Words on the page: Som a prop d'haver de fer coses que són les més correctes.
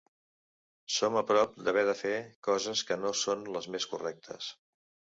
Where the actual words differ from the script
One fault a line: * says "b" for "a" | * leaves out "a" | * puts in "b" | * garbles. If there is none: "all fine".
* puts in "no"